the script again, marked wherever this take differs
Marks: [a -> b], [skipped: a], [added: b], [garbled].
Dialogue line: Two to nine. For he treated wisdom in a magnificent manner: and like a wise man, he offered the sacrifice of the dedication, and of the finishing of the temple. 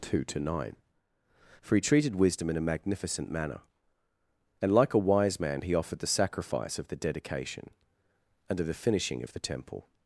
Two to nine. For he treated wisdom in a magnificent manner: and like a wise man, he offered the sacrifice of the dedication, and of the finishing of the temple.